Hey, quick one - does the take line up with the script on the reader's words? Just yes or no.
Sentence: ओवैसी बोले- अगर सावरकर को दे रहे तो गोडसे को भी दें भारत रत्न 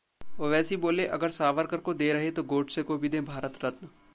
yes